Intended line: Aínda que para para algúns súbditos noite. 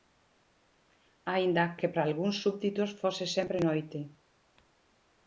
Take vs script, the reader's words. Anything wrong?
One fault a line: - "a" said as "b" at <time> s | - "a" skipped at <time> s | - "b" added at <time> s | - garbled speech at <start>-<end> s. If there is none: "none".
- "para" skipped at 2.0 s
- "fose sempre" added at 3.0 s